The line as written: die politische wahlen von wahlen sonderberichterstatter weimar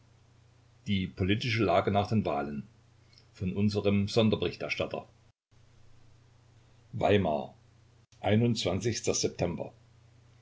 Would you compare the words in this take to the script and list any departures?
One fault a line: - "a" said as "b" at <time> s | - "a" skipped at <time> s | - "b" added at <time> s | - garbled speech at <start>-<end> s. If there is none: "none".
- "lage nach den" added at 1.6 s
- "wahlen" said as "unserem" at 3.5 s